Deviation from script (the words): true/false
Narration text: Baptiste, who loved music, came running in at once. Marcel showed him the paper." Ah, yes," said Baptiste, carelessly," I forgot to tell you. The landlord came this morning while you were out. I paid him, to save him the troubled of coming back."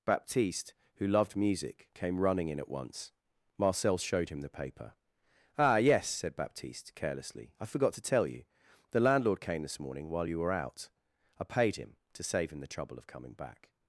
true